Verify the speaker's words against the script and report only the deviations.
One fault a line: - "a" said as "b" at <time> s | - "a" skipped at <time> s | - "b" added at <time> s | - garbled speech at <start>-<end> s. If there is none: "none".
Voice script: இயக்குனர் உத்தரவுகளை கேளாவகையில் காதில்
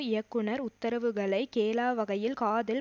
none